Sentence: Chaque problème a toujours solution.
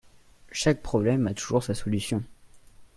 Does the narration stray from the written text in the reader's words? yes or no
yes